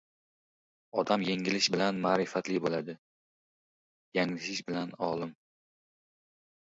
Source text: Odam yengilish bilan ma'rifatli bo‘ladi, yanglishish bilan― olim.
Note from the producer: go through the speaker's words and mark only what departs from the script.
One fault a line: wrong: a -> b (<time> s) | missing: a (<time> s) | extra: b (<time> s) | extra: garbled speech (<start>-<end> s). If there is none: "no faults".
no faults